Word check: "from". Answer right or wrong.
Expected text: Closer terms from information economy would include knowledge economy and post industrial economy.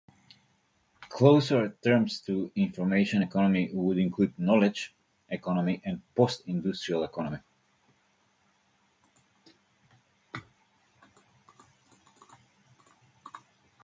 wrong